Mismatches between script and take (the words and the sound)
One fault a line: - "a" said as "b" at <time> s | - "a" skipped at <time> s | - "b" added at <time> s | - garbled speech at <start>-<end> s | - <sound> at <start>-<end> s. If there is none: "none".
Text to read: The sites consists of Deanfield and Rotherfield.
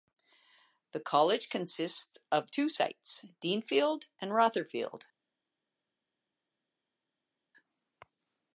- "sites" said as "college" at 1.0 s
- "two sites" added at 2.5 s